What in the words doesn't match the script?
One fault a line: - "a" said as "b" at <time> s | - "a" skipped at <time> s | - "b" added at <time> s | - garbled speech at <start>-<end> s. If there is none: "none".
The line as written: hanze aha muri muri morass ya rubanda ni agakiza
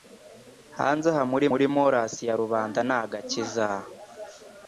none